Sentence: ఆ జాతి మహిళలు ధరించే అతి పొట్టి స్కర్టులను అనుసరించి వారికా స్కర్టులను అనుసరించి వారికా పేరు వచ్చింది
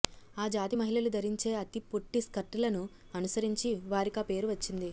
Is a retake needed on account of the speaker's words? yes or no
yes